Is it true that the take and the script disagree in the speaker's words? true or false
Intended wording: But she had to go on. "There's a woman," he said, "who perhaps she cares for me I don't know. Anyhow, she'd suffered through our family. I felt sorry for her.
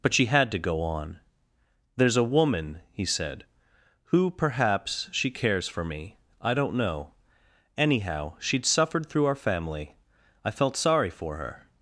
false